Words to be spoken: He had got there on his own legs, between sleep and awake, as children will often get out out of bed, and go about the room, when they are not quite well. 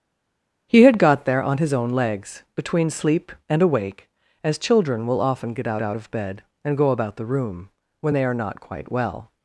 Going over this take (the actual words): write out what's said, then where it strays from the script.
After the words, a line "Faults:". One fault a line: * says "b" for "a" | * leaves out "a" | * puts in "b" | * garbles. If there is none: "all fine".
He had got there on his own legs, between sleep and awake, as children will often get out out of bed, and go about the room, when they are not quite well.
Faults:
all fine